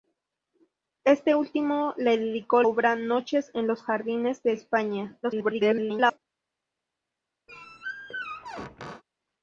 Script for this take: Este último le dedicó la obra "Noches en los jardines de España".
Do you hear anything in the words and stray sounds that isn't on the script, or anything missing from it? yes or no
yes